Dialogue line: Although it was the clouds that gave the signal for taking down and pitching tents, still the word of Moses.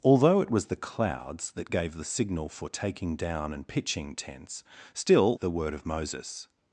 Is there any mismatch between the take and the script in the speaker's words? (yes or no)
no